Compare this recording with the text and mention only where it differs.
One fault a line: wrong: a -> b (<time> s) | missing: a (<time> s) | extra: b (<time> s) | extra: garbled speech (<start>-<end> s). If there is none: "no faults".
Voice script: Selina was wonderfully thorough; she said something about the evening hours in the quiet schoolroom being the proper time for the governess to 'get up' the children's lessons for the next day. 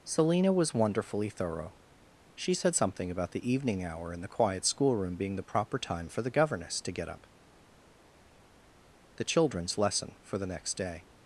wrong: hours -> hour (3.8 s)
wrong: lessons -> lesson (9.8 s)